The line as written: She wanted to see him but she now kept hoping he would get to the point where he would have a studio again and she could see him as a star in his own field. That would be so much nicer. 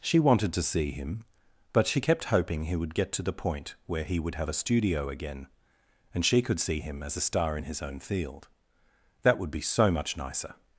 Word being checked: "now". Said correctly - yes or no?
no